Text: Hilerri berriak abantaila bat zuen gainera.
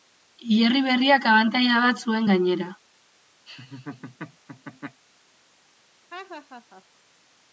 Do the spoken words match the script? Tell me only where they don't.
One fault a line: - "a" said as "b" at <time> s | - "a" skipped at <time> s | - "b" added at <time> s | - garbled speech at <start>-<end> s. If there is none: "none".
none